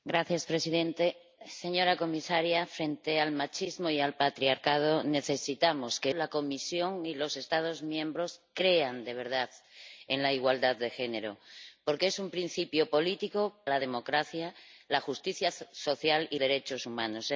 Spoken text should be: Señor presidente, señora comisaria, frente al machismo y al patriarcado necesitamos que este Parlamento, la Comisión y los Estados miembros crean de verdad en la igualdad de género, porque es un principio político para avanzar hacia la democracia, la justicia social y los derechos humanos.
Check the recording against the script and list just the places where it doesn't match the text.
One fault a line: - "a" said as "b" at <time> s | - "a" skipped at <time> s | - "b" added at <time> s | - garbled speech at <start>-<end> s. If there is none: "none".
- "este Parlamento" skipped at 6.1 s
- "para avanzar hacia" skipped at 13.6 s
- "los" skipped at 16.4 s